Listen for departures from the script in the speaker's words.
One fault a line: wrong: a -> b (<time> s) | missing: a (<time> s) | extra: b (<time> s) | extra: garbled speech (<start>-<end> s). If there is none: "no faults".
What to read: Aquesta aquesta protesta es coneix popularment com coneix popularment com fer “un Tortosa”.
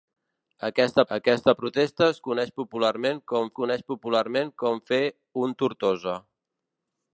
no faults